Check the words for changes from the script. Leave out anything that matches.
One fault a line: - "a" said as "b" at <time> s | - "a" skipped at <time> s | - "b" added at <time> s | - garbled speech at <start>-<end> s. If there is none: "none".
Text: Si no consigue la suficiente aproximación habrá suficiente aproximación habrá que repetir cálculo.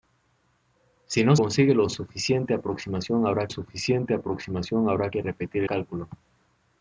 none